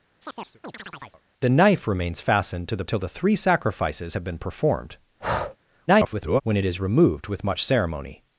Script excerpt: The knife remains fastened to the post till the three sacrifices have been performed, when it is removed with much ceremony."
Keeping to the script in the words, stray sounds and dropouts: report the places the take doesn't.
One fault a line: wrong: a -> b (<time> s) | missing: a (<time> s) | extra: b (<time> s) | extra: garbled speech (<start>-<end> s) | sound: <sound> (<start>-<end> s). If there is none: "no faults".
sound: chirp (0.2-1.2 s)
missing: post (2.9 s)
sound: breath (5.2-5.6 s)
extra: garbled speech (5.9-6.4 s)